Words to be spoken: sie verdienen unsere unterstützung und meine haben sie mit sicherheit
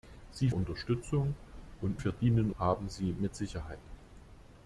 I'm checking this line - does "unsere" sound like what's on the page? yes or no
no